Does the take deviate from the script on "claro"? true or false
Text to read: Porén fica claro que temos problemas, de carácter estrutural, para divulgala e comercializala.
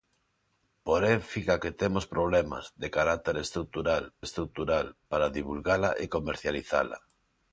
true